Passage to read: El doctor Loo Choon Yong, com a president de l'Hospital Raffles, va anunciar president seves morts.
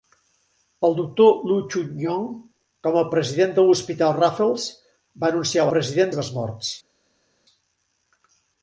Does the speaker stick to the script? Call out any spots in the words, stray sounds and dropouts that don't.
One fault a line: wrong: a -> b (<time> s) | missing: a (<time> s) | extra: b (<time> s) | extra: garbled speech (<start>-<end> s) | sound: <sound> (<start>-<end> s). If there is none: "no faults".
no faults